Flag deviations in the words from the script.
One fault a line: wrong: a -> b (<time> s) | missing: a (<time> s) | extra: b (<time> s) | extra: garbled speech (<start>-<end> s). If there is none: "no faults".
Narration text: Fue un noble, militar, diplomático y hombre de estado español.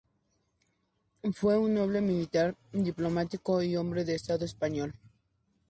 no faults